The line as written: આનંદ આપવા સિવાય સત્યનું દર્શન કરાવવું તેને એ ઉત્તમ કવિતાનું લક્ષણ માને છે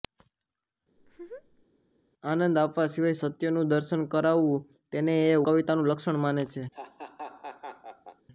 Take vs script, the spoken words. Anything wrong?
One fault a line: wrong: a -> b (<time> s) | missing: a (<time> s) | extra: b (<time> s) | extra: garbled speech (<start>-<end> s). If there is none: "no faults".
missing: ઉત્તમ (5.4 s)